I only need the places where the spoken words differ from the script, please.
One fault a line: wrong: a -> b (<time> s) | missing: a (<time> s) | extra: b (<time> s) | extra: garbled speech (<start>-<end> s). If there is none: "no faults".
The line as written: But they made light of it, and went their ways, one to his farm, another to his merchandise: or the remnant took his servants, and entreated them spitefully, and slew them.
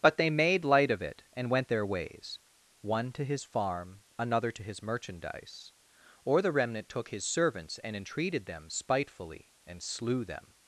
no faults